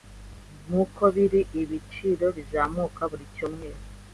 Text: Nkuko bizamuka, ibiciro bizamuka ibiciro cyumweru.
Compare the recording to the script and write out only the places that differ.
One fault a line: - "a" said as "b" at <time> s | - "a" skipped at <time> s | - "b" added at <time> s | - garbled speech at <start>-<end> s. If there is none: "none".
- "bizamuka" said as "biri" at 1.1 s
- "ibiciro" said as "buri" at 3.1 s